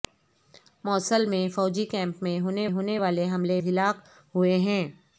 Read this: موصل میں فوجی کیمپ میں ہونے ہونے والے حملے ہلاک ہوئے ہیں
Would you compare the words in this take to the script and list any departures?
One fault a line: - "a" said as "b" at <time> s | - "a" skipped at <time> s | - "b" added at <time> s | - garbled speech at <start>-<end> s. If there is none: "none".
none